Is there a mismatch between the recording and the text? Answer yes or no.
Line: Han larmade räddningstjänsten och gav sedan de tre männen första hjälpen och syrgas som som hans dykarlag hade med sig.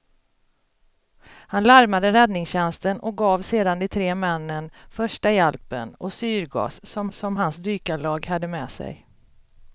no